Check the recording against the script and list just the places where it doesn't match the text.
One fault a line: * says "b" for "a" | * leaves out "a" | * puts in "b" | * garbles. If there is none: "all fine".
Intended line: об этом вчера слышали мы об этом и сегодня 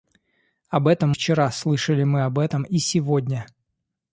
all fine